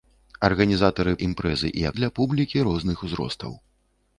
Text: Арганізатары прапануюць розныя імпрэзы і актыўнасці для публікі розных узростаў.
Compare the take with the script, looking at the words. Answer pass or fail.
fail